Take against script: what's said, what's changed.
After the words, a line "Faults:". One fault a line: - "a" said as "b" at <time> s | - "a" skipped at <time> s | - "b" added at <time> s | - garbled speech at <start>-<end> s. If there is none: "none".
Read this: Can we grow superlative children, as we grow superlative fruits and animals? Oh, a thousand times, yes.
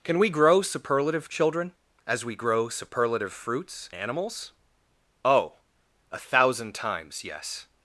Can we grow superlative children, as we grow superlative fruits animals? Oh, a thousand times, yes.
Faults:
- "and" skipped at 3.9 s